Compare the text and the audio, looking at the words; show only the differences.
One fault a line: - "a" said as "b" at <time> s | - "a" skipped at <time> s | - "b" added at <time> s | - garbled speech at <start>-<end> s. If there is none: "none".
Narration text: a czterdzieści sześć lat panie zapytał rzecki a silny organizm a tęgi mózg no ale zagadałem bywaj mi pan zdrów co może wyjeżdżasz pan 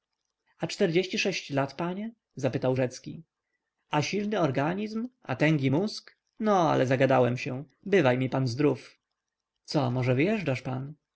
- "się" added at 7.4 s